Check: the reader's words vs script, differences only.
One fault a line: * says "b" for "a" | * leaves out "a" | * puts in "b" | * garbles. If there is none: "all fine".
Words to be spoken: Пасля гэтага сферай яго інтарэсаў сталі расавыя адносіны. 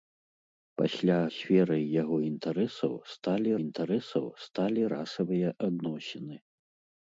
* leaves out "гэтага"
* puts in "інтарэсаў сталі"